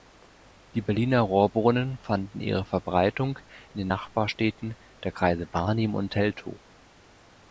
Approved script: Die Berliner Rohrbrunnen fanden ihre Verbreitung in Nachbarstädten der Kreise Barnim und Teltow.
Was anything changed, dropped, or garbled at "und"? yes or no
no